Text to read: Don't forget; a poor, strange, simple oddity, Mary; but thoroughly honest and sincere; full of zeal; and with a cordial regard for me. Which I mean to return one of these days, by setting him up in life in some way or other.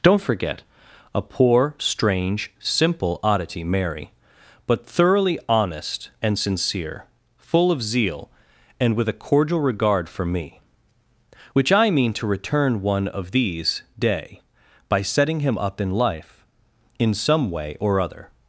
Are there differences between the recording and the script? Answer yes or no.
yes